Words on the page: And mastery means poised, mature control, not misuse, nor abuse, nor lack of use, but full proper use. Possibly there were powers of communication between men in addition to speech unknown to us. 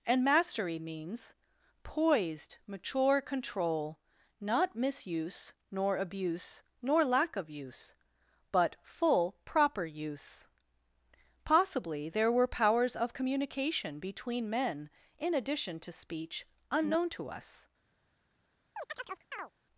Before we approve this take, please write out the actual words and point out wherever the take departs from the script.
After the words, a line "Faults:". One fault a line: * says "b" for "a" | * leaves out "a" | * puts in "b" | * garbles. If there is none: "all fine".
And mastery means poised, mature control, not misuse, nor abuse, nor lack of use, but full proper use. Possibly there were powers of communication between men in addition to speech unknown to us.
Faults:
all fine